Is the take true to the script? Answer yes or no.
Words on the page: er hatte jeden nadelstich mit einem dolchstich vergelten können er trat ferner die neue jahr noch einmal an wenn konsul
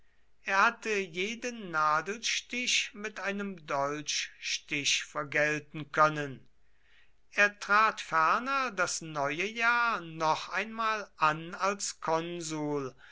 no